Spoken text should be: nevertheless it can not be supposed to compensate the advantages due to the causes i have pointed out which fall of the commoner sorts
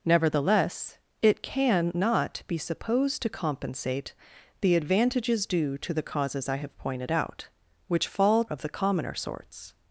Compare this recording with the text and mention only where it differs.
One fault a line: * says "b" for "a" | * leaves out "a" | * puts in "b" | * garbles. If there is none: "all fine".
all fine